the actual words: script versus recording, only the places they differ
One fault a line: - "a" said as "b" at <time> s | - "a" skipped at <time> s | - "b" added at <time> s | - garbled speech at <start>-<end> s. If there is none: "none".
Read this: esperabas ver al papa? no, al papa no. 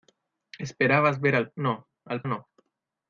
- "papa" skipped at 1.5 s
- "papa" skipped at 2.2 s